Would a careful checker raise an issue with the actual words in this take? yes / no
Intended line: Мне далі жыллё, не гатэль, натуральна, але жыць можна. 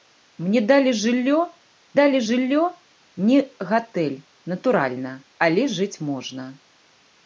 yes